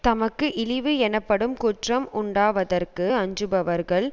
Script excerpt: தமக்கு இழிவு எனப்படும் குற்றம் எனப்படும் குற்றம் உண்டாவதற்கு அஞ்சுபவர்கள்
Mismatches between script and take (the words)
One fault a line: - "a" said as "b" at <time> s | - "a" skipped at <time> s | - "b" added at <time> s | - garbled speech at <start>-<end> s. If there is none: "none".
- "எனப்படும் குற்றம்" skipped at 2.0 s